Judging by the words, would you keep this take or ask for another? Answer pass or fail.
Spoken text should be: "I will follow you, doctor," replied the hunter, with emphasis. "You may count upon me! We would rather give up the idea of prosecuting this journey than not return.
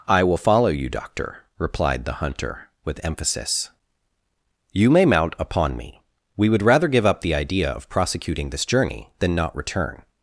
fail